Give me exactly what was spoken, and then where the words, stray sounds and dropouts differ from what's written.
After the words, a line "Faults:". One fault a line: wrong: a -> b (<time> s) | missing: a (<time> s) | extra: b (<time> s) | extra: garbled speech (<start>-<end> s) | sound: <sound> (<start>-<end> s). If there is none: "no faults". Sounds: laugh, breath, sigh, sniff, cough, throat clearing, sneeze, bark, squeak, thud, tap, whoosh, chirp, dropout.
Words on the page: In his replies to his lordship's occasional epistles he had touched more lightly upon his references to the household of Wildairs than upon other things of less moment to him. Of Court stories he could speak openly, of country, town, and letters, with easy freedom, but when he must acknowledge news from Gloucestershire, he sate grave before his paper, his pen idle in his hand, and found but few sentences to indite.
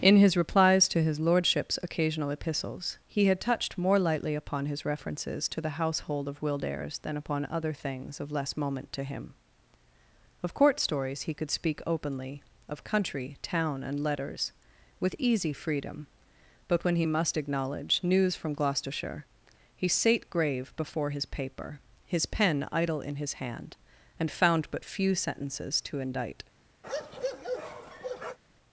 In his replies to his lordship's occasional epistles he had touched more lightly upon his references to the household of Wildairs than upon other things of less moment to him. Of Court stories he could speak openly, of country, town, and letters, with easy freedom, but when he must acknowledge news from Gloucestershire, he sate grave before his paper, his pen idle in his hand, and found but few sentences to indite.
Faults:
sound: bark (26.8-28.4 s)